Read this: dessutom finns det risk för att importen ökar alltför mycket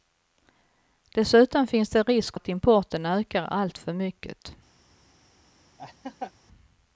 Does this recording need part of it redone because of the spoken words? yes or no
yes